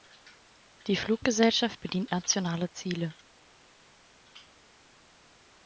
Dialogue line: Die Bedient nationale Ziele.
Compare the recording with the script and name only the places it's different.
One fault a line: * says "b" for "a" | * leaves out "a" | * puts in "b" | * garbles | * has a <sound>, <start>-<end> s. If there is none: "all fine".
* puts in "Fluggesellschaft"